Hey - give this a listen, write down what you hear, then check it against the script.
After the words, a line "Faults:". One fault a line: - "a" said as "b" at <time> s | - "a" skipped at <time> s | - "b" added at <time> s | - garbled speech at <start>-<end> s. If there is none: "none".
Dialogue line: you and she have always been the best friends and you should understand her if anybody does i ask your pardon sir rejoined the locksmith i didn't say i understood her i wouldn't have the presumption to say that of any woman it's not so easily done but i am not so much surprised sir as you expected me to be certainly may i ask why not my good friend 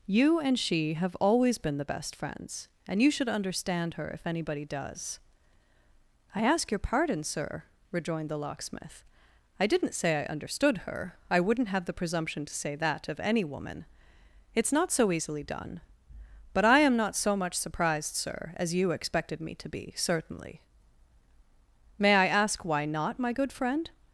you and she have always been the best friends and you should understand her if anybody does i ask your pardon sir rejoined the locksmith i didn't say i understood her i wouldn't have the presumption to say that of any woman it's not so easily done but i am not so much surprised sir as you expected me to be certainly may i ask why not my good friend
Faults:
none